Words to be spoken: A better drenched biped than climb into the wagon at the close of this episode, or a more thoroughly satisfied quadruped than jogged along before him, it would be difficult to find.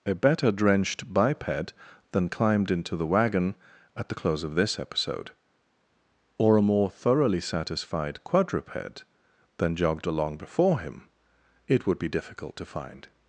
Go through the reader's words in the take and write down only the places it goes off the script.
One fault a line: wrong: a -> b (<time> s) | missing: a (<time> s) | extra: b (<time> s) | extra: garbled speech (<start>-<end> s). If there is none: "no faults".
wrong: climb -> climbed (2.3 s)